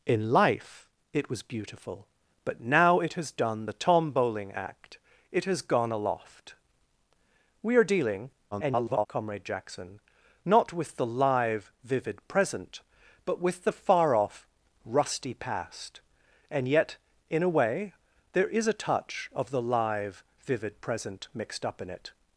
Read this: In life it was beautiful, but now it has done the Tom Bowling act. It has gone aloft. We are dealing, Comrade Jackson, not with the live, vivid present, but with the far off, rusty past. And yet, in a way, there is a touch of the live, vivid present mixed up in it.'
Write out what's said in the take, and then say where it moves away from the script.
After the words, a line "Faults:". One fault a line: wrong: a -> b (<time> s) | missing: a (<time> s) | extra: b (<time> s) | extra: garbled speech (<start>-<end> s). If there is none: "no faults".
In life it was beautiful, but now it has done the Tom Bowling act. It has gone aloft. We are dealing, [garbled] Comrade Jackson, not with the live, vivid present, but with the far off, rusty past. And yet, in a way, there is a touch of the live, vivid present mixed up in it.'
Faults:
extra: garbled speech (8.5-9.1 s)